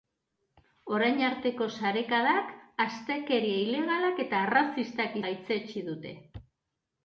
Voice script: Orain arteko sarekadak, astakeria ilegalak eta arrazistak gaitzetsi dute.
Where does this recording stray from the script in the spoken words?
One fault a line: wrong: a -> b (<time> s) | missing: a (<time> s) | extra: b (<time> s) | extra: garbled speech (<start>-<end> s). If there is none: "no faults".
no faults